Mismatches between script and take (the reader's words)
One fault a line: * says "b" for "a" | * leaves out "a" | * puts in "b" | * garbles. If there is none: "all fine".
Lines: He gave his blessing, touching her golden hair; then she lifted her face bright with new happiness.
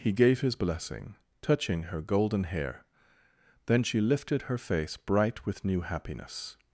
all fine